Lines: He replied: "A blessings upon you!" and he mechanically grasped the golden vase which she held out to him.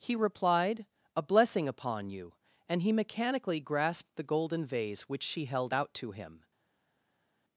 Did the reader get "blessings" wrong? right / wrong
wrong